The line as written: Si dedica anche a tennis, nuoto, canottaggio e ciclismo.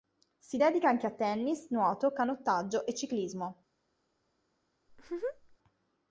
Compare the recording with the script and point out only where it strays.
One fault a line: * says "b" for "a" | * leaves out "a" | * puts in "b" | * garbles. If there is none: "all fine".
all fine